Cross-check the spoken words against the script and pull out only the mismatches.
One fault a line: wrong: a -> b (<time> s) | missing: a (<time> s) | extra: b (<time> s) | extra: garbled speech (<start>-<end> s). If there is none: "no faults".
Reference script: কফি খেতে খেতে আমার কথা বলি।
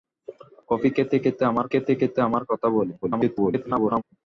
extra: খেতে খেতে আমার (1.7 s)
extra: garbled speech (3.0-4.0 s)